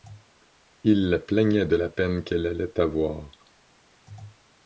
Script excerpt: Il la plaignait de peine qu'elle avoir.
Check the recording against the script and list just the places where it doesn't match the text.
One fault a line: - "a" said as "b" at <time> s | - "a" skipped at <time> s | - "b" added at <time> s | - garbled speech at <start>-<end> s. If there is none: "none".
- "la" added at 1.8 s
- "allait" added at 2.5 s